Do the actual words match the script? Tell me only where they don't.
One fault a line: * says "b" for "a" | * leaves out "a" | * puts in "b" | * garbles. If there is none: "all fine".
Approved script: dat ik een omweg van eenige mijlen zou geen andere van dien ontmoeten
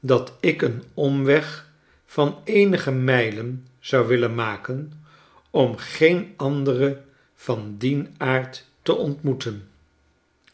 * puts in "willen maken om"
* puts in "aard te"